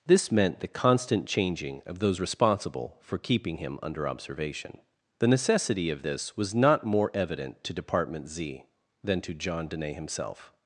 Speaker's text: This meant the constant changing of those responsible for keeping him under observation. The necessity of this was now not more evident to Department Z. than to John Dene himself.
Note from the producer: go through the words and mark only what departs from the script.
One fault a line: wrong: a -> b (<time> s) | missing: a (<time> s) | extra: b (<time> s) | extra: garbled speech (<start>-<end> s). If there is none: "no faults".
missing: now (6.5 s)